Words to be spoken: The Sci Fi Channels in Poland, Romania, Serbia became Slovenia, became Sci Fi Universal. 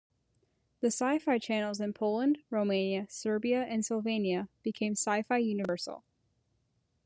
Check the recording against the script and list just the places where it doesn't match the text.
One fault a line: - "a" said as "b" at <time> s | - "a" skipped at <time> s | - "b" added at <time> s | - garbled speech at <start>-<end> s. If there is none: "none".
- "became" said as "and" at 3.6 s